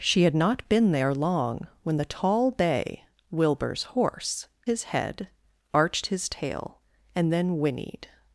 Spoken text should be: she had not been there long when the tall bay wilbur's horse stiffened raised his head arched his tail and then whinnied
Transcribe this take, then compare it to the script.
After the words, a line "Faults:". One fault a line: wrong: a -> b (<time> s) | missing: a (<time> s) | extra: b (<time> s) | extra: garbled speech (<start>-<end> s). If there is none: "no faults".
she had not been there long when the tall bay wilbur's horse his head arched his tail and then whinnied
Faults:
missing: stiffened raised (4.5 s)